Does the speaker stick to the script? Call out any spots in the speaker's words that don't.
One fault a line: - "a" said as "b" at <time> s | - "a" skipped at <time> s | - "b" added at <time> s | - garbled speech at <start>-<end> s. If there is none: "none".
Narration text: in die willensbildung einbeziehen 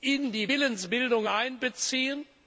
none